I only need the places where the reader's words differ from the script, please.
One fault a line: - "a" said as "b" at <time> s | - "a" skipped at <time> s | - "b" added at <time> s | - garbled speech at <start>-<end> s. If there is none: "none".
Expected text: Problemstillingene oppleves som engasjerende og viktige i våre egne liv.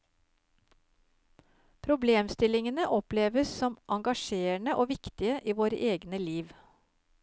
none